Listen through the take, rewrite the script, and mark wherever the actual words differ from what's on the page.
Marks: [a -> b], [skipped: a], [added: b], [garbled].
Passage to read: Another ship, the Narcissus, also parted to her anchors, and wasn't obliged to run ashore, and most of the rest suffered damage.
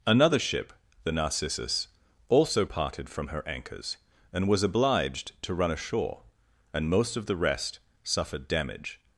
Another ship, the Narcissus, also parted [to -> from] her anchors, and [wasn't -> was] obliged to run ashore, and most of the rest suffered damage.